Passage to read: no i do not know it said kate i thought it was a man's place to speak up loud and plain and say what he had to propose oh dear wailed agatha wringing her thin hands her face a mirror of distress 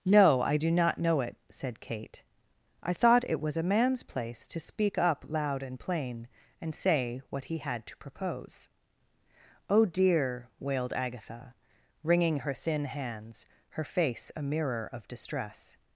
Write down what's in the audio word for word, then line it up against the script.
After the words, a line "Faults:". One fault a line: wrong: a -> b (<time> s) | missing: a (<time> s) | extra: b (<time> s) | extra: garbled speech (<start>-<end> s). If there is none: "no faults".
no i do not know it said kate i thought it was a man's place to speak up loud and plain and say what he had to propose oh dear wailed agatha wringing her thin hands her face a mirror of distress
Faults:
no faults